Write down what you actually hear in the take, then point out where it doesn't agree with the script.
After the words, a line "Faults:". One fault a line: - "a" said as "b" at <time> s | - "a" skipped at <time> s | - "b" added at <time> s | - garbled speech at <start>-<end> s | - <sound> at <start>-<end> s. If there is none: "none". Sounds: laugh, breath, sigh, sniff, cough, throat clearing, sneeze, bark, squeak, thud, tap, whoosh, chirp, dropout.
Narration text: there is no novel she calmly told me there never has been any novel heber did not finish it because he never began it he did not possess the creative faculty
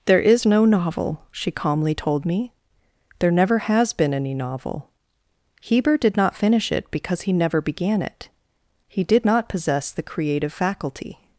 there is no novel she calmly told me there never has been any novel heber did not finish it because he never began it he did not possess the creative faculty
Faults:
none